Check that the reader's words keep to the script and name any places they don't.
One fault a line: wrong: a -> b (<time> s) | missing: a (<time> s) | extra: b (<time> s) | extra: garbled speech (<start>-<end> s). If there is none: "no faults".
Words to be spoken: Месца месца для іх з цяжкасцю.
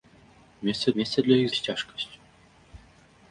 no faults